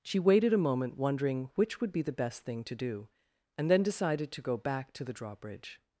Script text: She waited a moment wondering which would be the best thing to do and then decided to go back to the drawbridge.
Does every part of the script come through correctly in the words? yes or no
yes